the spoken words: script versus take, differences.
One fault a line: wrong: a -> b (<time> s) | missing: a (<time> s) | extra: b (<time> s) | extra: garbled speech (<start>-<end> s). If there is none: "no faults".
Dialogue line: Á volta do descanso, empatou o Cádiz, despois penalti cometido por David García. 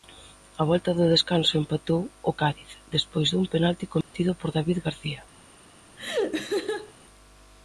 extra: dun (3.3 s)